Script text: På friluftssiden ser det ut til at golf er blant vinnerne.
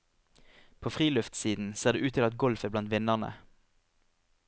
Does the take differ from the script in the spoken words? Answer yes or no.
no